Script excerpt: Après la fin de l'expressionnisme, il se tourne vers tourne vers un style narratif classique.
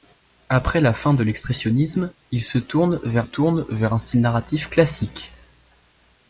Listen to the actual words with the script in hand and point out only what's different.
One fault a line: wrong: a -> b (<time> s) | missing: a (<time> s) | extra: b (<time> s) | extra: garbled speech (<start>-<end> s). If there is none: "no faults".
no faults